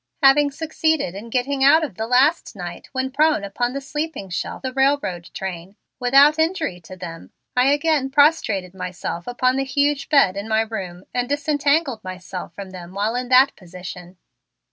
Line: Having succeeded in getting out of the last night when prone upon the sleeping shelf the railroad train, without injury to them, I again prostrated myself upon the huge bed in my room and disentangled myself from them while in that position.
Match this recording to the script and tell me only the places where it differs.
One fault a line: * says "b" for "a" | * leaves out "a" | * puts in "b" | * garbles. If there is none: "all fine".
all fine